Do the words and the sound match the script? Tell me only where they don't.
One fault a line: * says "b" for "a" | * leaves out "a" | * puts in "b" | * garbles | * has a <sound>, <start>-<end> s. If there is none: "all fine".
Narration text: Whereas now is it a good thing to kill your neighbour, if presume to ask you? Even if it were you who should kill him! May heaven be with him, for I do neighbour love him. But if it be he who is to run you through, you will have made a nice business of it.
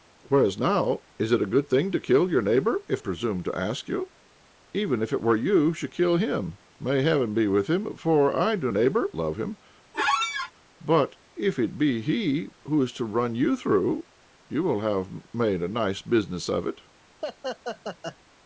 * has a squeak, 9.9-10.5 s
* has a laugh, 17.2-18.2 s